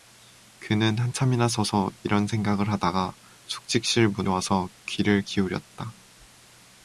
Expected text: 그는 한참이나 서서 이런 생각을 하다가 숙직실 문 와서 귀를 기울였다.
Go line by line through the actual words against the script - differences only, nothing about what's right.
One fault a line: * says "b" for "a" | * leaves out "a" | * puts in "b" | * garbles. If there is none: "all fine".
all fine